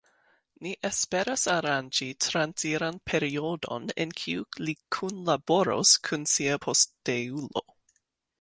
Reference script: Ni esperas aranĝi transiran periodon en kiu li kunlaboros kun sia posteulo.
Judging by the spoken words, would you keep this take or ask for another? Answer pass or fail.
pass